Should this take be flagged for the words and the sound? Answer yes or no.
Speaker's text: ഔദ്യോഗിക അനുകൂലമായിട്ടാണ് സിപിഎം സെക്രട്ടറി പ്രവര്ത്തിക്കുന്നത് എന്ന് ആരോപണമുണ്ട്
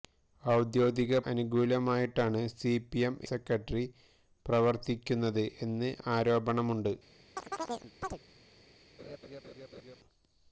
yes